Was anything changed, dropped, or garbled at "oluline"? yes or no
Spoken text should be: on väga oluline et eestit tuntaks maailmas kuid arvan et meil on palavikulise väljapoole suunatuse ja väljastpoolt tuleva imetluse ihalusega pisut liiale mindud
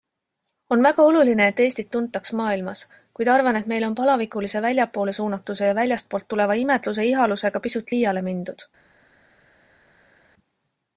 no